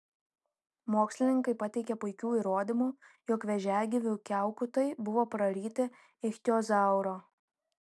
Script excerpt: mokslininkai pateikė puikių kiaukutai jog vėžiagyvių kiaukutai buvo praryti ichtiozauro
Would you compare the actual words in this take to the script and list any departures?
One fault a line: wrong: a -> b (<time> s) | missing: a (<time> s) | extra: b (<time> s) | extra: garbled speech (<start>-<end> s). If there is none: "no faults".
wrong: kiaukutai -> įrodymų (2.4 s)